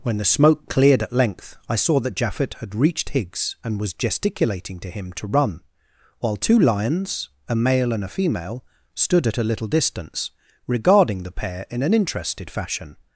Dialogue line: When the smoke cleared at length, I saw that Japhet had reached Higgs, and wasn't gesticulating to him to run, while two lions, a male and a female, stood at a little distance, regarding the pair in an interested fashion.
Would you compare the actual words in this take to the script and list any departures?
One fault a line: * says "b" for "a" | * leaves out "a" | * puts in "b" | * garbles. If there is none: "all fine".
* says "was" for "wasn't"